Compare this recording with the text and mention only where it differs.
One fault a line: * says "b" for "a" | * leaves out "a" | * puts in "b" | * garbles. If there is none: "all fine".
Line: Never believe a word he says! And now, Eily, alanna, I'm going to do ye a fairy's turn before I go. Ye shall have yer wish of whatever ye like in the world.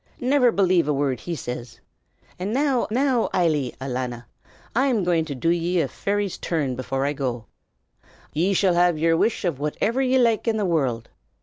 * puts in "now"